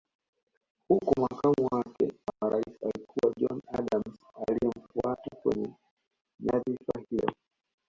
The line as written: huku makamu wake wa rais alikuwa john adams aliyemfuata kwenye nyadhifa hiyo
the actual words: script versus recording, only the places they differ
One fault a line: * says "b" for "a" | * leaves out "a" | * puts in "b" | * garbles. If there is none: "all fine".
all fine